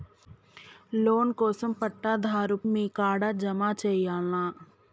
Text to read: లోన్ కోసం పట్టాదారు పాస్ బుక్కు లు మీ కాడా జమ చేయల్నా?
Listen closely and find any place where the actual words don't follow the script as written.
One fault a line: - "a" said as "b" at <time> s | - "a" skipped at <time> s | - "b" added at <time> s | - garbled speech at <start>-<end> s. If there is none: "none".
- "పాస్ బుక్కు లు" skipped at 2.6 s